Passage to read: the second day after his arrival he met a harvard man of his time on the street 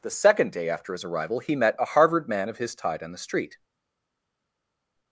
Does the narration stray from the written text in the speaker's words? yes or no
yes